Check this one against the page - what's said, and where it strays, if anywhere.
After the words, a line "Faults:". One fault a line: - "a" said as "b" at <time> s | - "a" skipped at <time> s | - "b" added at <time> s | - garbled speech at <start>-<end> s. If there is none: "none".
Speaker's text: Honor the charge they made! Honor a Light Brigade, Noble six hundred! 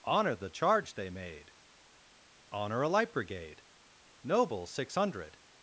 Honor the charge they made! Honor a Light Brigade, Noble six hundred!
Faults:
none